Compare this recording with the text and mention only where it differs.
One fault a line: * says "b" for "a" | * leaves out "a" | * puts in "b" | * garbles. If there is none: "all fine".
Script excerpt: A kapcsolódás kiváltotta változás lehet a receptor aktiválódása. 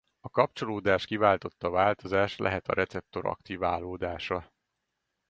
all fine